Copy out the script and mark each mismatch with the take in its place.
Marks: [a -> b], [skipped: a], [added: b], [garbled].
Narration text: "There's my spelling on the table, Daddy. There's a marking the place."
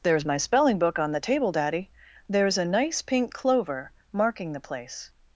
"There's my spelling [added: book] on the table, Daddy. There's a [added: nice pink clover] marking the place."